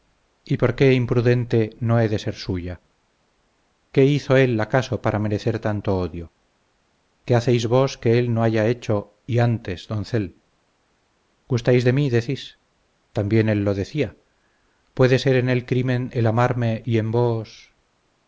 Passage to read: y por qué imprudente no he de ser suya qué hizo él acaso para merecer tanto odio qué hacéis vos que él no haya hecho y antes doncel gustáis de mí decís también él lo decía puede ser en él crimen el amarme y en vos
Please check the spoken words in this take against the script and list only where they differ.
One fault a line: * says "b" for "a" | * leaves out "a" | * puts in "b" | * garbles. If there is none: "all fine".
all fine